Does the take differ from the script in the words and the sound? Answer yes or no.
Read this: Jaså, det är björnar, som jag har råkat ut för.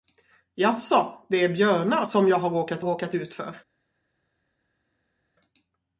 yes